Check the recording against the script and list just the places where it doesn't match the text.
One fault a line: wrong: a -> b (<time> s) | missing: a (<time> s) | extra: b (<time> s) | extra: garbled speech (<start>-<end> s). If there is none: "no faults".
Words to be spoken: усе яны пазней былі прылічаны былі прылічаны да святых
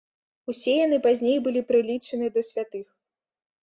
missing: былі прылічаны (2.4 s)